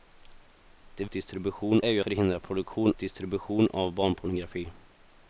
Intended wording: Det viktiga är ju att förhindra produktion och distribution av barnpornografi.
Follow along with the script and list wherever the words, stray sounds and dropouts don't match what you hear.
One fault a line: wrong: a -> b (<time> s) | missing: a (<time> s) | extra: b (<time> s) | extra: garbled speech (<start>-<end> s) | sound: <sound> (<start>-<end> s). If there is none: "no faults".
wrong: viktiga -> distribution (1.1 s)
missing: att (2.0 s)
missing: och (2.9 s)